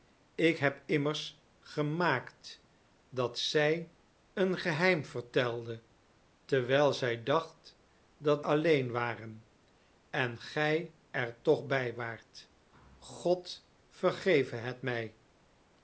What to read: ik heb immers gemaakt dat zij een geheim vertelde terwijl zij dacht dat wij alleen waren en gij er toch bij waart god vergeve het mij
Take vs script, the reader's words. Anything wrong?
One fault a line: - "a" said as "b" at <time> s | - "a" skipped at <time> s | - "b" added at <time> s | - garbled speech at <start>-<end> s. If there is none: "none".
- "wij" skipped at 8.5 s